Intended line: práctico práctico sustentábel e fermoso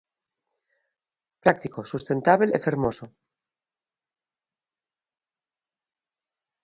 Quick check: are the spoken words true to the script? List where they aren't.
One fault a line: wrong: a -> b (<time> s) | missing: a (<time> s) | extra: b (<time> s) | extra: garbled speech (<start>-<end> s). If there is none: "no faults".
missing: práctico (1.8 s)